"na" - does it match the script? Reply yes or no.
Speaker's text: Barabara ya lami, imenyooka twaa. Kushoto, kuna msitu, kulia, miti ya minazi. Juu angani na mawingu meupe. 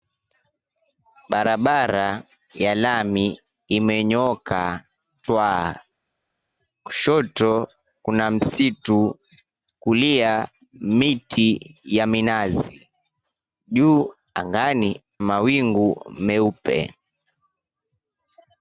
no